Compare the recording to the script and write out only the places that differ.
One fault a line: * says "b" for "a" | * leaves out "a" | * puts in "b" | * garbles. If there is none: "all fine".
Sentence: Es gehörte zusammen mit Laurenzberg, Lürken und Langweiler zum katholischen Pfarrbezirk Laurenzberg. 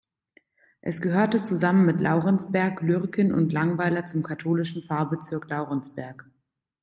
all fine